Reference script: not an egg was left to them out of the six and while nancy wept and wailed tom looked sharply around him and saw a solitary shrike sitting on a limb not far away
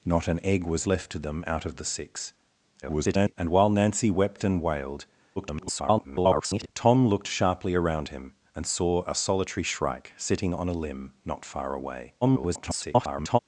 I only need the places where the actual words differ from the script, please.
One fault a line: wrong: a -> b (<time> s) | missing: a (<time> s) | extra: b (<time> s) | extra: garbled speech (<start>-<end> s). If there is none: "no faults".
extra: garbled speech (2.8-3.4 s)
extra: garbled speech (5.4-6.7 s)
extra: garbled speech (12.2-13.4 s)